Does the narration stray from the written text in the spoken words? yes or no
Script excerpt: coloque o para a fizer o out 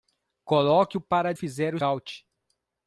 no